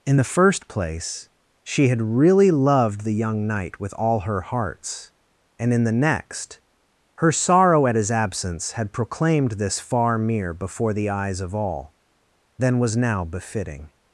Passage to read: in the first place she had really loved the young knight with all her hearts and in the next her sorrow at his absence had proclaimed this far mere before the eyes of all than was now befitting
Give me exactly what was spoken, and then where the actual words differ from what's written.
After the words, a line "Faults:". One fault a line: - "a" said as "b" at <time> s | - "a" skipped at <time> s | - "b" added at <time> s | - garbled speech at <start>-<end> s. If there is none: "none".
in the first place she had really loved the young knight with all her hearts and in the next her sorrow at his absence had proclaimed this far mere before the eyes of all than was now befitting
Faults:
none